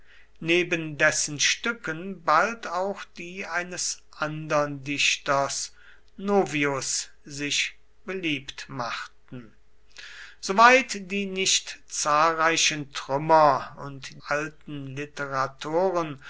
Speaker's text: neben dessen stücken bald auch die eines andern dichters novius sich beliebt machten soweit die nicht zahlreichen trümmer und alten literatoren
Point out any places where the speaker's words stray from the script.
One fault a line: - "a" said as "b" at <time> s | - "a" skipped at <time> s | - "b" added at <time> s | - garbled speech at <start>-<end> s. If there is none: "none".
none